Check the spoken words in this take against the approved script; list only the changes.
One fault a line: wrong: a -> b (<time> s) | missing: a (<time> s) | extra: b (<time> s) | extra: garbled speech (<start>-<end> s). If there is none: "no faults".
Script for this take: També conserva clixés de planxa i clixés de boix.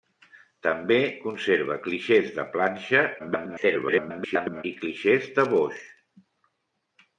extra: garbled speech (3.2-4.6 s)